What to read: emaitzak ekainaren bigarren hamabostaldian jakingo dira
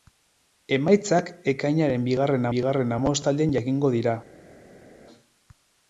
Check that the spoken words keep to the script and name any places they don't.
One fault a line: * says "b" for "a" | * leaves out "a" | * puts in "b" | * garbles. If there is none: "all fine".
* puts in "bigarren"